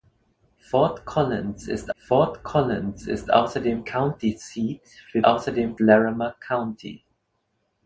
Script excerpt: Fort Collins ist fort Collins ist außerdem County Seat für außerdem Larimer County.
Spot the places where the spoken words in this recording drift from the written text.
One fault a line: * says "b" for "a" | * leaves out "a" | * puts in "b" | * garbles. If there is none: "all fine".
all fine